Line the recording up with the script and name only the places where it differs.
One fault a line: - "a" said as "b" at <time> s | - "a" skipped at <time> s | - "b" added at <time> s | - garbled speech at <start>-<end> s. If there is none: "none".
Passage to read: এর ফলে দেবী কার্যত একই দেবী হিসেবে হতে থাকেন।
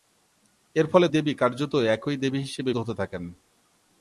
none